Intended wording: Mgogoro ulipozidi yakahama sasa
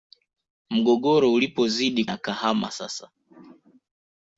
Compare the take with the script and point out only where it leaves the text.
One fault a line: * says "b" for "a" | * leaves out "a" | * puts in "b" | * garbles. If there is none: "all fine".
all fine